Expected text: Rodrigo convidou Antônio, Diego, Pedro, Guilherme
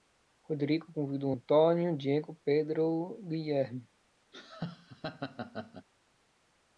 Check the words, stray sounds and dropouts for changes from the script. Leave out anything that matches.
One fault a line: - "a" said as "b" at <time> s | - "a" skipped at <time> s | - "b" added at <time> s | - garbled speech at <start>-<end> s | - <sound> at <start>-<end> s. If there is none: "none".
- laugh at 4.3-5.9 s